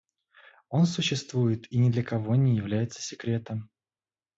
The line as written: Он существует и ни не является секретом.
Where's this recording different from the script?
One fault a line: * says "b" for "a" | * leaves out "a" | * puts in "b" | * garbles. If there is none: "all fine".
* puts in "для кого"